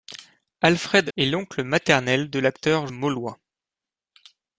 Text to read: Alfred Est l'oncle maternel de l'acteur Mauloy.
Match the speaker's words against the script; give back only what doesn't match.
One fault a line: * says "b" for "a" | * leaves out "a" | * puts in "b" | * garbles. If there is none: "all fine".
all fine